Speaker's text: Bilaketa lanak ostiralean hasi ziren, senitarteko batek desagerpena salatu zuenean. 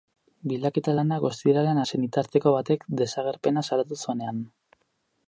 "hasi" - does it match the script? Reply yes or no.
no